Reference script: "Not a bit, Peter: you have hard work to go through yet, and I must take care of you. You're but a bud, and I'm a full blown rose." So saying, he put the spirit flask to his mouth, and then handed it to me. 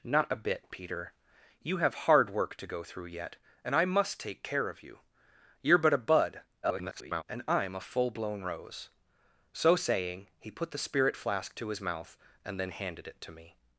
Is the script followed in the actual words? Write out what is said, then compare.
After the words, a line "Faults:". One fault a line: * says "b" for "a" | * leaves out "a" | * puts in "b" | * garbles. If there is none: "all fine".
"Not a bit, Peter: you have hard work to go through yet, and I must take care of you. You're but a bud, [garbled] and I'm a full blown rose." So saying, he put the spirit flask to his mouth, and then handed it to me.
Faults:
* garbles